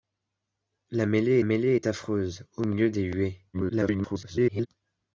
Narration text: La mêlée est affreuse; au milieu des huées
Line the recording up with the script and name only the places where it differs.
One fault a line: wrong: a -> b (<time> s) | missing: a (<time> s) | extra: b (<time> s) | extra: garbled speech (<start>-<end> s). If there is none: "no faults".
extra: mêlée (1.4 s)
extra: garbled speech (3.5-4.7 s)